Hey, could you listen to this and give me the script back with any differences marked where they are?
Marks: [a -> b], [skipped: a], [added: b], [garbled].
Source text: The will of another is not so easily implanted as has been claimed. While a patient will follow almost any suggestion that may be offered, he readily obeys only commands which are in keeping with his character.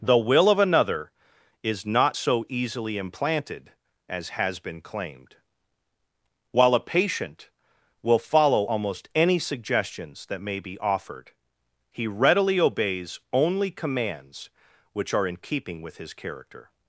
The will of another is not so easily implanted as has been claimed. While a patient will follow almost any [suggestion -> suggestions] that may be offered, he readily obeys only commands which are in keeping with his character.